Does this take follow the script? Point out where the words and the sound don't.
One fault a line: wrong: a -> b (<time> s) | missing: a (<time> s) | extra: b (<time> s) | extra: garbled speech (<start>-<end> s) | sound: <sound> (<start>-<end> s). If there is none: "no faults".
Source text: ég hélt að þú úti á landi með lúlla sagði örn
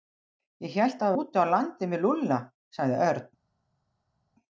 no faults